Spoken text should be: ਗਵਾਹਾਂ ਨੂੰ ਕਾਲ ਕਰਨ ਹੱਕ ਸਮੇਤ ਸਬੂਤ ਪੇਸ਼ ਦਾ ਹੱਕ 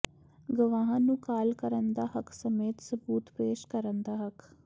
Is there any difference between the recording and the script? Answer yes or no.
yes